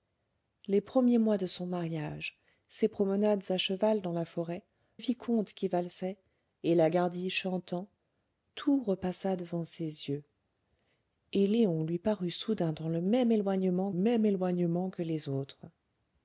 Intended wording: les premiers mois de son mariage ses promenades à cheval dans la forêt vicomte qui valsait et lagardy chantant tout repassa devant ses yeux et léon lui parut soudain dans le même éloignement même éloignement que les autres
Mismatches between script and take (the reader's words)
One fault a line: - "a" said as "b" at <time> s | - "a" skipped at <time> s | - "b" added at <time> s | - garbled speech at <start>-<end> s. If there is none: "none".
none